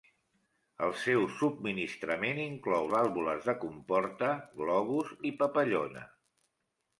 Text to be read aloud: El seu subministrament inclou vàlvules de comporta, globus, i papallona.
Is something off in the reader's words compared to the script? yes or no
no